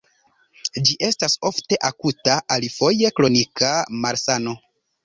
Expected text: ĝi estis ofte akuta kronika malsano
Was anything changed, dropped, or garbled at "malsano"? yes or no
no